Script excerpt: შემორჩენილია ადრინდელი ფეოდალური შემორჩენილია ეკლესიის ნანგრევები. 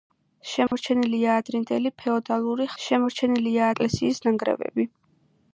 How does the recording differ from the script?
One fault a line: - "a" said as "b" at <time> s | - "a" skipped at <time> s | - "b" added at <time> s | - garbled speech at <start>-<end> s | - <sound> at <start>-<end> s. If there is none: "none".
- dropout at 0.7-0.7 s